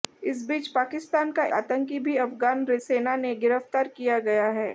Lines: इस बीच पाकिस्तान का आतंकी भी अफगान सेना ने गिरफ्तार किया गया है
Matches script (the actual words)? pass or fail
pass